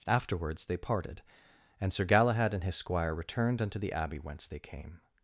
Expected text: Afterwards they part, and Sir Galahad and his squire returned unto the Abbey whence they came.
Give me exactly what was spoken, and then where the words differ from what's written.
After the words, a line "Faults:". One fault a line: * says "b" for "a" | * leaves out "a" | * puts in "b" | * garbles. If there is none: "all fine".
Afterwards they parted, and Sir Galahad and his squire returned unto the Abbey whence they came.
Faults:
* says "parted" for "part"